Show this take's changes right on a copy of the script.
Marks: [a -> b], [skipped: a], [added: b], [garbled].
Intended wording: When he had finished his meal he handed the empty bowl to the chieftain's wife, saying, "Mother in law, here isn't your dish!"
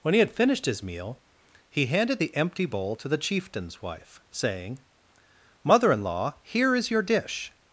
When he had finished his meal he handed the empty bowl to the chieftain's wife, saying, "Mother in law, here [isn't -> is] your dish!"